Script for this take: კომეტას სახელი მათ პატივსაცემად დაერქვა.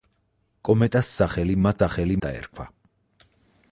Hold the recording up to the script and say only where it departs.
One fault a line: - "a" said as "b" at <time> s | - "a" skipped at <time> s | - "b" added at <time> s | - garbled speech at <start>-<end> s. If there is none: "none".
- "პატივსაცემად" said as "სახელი" at 1.8 s